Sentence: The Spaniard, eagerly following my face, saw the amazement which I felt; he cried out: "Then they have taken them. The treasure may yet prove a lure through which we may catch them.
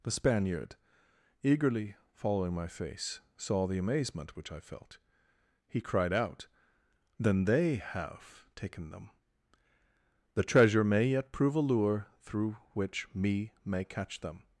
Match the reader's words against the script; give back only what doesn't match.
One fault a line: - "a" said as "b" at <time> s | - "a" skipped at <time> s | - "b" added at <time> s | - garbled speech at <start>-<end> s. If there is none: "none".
- "we" said as "me" at 13.1 s